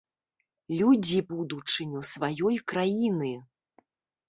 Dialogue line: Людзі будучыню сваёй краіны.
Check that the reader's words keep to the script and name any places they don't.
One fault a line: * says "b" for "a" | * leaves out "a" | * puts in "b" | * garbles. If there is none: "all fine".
all fine